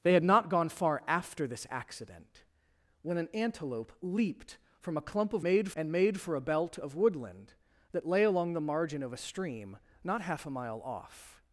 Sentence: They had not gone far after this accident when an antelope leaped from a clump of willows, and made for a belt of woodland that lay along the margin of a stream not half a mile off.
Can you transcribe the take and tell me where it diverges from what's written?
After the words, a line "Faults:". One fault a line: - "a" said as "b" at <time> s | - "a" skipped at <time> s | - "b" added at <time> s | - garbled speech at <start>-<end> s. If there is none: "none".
They had not gone far after this accident when an antelope leaped from a clump of made, and made for a belt of woodland that lay along the margin of a stream not half a mile off.
Faults:
- "willows" said as "made" at 5.4 s